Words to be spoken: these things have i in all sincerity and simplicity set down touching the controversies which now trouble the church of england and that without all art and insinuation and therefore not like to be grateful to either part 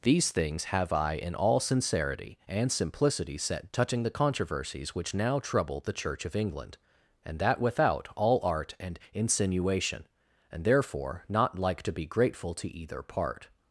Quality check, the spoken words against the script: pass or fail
fail